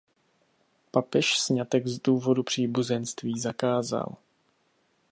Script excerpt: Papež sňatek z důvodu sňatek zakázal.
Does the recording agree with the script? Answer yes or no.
no